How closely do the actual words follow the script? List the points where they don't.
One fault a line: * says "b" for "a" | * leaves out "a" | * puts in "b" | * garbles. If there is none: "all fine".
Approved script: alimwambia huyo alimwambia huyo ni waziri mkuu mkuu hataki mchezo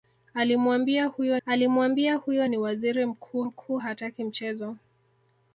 all fine